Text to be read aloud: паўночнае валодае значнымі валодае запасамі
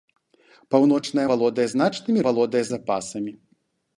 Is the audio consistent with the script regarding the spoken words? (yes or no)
yes